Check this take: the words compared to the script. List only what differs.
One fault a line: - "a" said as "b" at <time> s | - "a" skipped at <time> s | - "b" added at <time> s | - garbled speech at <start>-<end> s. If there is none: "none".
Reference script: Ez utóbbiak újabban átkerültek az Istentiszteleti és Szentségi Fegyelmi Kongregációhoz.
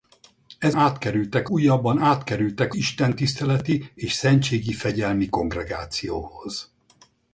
- "utóbbiak" said as "átkerültek" at 0.7 s
- "az" skipped at 2.7 s